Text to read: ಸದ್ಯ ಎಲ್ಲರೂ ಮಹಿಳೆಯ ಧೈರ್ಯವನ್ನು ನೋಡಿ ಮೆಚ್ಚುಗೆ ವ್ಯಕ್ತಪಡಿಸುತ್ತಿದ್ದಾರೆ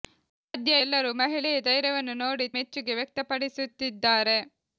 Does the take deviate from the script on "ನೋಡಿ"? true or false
false